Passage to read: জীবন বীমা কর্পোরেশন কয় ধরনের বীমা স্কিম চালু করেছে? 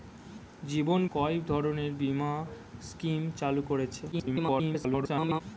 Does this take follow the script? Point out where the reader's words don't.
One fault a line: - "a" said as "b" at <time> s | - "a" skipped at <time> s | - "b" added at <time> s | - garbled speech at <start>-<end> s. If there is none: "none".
- "বীমা কর্পোরেশন" skipped at 1.0 s
- garbled speech at 4.1-5.4 s